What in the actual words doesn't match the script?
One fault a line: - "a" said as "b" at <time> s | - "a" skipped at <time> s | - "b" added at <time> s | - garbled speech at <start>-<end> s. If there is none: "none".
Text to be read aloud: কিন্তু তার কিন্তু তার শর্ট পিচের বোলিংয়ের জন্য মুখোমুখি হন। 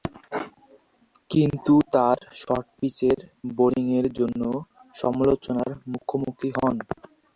- "কিন্তু তার" skipped at 2.2 s
- "সমালোচনার" added at 5.0 s